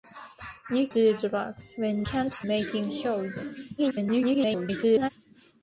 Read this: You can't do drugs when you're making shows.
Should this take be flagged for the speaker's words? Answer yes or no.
yes